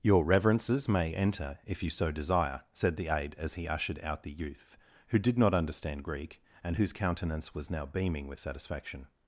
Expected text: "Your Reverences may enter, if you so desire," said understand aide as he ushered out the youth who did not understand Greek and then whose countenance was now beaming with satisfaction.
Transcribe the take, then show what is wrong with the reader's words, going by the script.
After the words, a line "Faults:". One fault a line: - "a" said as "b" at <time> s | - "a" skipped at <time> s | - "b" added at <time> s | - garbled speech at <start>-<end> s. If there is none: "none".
"Your Reverences may enter, if you so desire," said the aide as he ushered out the youth who did not understand Greek and whose countenance was now beaming with satisfaction.
Faults:
- "understand" said as "the" at 3.0 s
- "then" skipped at 6.8 s